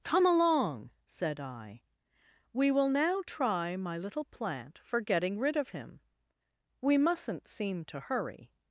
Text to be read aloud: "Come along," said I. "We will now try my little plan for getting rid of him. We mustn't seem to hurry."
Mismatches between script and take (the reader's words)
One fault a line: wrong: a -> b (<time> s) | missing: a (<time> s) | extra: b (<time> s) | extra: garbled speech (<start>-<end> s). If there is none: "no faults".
wrong: plan -> plant (4.2 s)